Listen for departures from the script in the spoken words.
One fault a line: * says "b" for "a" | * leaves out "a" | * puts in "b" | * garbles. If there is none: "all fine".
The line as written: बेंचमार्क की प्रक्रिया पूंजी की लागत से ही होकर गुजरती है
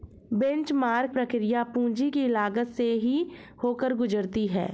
* leaves out "की"